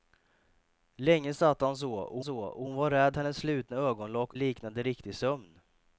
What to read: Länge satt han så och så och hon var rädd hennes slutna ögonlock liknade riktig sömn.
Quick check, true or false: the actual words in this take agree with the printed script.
true